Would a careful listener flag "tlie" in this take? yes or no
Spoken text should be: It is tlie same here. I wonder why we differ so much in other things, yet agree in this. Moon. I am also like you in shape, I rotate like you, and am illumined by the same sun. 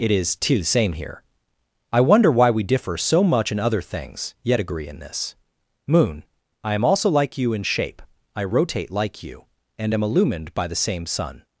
yes